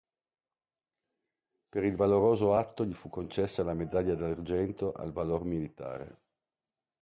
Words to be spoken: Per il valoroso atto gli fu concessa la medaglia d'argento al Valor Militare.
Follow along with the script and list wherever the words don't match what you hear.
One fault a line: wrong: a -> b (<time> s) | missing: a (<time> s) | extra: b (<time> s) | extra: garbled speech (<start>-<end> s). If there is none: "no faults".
no faults